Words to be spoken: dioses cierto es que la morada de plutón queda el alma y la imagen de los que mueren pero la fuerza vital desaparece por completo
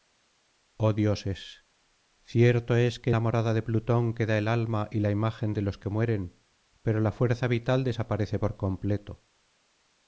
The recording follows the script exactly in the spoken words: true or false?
true